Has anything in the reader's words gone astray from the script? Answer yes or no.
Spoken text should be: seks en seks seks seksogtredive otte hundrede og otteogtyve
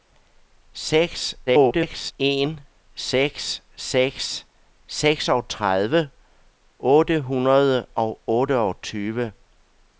yes